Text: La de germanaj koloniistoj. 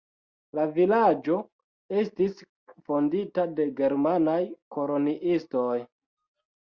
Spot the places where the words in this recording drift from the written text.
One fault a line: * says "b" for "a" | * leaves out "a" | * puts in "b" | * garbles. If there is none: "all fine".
* puts in "vilaĝo estis fondita"